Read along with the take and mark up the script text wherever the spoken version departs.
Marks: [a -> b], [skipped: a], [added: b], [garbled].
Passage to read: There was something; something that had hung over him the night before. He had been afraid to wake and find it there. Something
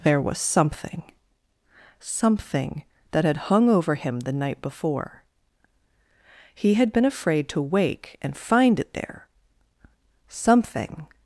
There was something; something that had hung over him the night before. He had been afraid to wake and find it there. Something